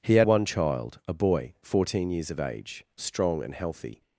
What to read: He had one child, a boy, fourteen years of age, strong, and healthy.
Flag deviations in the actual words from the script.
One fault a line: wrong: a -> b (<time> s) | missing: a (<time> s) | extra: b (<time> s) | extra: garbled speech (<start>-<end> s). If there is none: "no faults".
no faults